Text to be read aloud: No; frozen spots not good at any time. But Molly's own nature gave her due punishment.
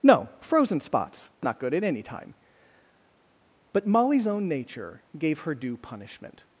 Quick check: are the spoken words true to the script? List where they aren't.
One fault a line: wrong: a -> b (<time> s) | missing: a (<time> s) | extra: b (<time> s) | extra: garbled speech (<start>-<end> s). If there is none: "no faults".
no faults